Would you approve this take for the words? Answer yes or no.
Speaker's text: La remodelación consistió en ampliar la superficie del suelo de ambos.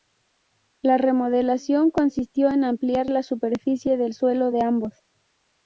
yes